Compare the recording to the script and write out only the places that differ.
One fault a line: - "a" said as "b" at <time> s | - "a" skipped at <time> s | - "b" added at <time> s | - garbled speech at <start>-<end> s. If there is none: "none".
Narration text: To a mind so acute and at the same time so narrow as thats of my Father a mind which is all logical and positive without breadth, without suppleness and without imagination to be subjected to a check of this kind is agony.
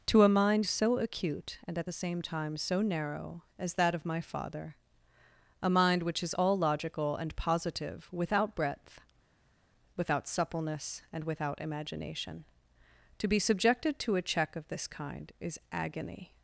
- "thats" said as "that" at 3.7 s